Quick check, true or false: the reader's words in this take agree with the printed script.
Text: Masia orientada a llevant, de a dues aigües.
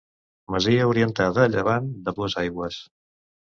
true